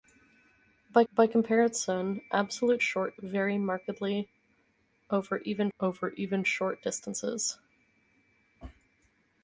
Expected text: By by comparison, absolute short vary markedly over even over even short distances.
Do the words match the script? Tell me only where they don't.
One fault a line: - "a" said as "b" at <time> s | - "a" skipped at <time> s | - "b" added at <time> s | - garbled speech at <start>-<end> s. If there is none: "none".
none